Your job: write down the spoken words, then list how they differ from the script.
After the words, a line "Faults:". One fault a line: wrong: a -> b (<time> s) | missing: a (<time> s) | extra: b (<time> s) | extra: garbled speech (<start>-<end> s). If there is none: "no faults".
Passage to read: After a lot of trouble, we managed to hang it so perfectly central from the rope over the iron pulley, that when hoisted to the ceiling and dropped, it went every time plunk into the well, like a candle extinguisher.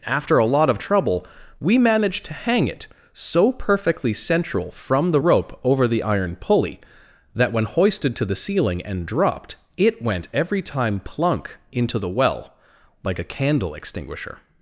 After a lot of trouble, we managed to hang it so perfectly central from the rope over the iron pulley, that when hoisted to the ceiling and dropped, it went every time plunk into the well, like a candle extinguisher.
Faults:
no faults